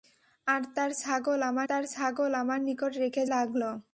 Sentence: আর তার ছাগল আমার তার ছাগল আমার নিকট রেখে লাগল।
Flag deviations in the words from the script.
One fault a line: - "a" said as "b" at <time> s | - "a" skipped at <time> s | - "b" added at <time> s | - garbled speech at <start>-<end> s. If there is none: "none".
none